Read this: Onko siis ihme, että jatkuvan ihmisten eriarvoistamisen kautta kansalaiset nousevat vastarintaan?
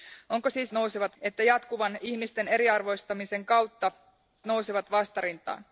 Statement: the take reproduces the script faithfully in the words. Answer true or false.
false